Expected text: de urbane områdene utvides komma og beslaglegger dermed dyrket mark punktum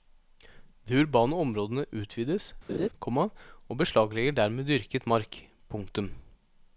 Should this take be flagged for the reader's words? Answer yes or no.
no